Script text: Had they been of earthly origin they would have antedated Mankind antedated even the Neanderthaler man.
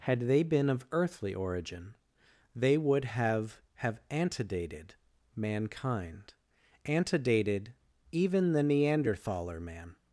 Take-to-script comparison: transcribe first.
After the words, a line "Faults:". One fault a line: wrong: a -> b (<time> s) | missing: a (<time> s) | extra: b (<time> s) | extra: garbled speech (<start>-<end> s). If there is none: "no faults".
Had they been of earthly origin they would have have antedated Mankind antedated even the Neanderthaler man.
Faults:
extra: have (3.8 s)